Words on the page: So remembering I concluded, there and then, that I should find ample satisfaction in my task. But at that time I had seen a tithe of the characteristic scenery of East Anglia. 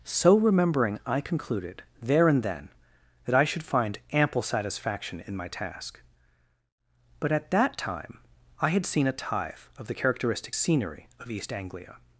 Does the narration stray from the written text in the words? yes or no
no